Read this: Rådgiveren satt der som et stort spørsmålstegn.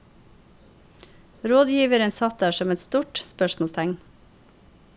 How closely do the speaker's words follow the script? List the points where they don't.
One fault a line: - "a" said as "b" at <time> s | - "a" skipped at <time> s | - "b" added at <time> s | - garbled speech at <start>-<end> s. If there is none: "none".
none